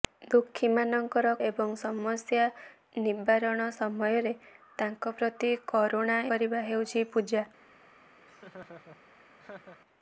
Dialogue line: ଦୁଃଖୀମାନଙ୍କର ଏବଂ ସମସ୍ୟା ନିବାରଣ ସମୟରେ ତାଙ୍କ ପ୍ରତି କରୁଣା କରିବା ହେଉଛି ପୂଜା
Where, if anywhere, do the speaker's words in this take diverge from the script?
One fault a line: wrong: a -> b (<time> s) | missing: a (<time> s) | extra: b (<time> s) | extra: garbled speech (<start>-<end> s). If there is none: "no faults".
no faults